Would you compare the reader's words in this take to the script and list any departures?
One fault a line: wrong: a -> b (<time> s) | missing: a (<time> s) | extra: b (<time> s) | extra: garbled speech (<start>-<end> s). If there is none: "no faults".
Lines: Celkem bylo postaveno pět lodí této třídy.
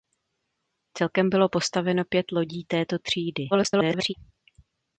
extra: garbled speech (3.5-4.1 s)